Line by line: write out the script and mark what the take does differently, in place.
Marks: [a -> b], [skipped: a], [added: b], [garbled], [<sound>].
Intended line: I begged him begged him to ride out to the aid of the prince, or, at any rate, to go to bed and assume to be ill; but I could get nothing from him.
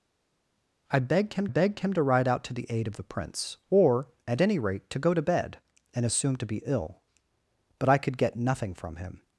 I begged him begged him to ride out to the aid of the prince, or, at any rate, to go to bed and assume to be ill; but I could get nothing from him.